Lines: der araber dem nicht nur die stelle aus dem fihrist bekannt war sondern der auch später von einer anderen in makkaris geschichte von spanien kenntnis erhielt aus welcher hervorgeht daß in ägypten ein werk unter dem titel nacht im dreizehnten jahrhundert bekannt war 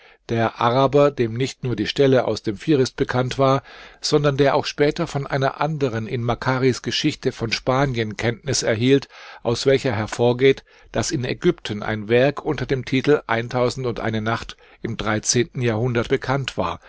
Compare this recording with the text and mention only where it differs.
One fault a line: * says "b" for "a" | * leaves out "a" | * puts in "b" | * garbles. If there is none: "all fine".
all fine